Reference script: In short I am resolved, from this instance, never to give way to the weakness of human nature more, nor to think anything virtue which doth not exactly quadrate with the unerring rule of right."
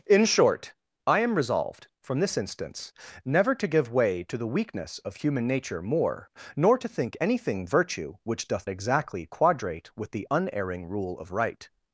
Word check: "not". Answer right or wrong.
wrong